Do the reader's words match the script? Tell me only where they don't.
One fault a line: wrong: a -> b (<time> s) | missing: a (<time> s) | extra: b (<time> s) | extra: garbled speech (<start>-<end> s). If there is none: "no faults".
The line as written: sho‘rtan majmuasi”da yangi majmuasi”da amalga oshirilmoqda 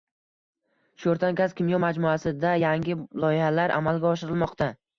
extra: gaz kimyo (1.4 s)
wrong: majmuasi”da -> loyihalar (3.2 s)